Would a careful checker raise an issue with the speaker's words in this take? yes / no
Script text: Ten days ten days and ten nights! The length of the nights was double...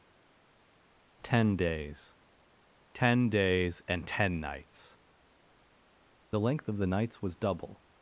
no